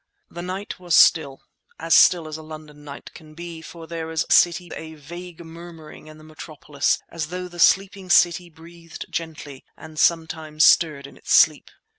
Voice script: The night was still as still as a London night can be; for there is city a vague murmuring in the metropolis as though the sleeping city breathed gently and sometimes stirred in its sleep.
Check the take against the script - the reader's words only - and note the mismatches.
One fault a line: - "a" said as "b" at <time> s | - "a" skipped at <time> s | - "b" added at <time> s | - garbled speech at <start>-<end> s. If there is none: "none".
none